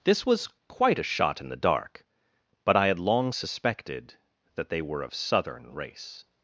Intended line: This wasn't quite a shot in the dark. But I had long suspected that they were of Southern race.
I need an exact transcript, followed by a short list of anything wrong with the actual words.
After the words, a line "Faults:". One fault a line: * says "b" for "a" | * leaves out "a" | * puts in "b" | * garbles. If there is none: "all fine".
This was quite a shot in the dark. But I had long suspected that they were of Southern race.
Faults:
* says "was" for "wasn't"